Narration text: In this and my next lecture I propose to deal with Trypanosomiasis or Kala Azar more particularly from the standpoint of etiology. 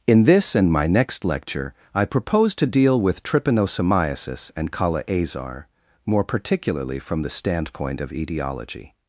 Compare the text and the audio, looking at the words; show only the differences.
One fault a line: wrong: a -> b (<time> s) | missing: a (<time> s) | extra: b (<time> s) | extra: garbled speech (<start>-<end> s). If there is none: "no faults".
wrong: or -> and (4.6 s)